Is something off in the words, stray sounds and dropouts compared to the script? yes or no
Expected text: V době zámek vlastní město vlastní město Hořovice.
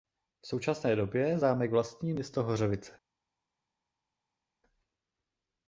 yes